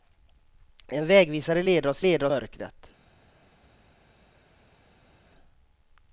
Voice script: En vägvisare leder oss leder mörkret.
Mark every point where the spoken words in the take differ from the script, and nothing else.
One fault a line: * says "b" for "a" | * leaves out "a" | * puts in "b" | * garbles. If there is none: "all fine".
all fine